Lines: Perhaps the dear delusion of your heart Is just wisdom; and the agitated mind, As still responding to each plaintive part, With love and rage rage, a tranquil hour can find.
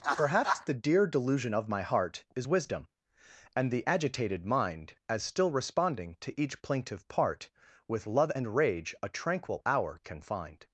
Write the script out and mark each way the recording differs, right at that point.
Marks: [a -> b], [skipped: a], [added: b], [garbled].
Perhaps the dear delusion of [your -> my] heart Is [skipped: just] wisdom; and the agitated mind, As still responding to each plaintive part, With love and rage [skipped: rage,] a tranquil hour can find.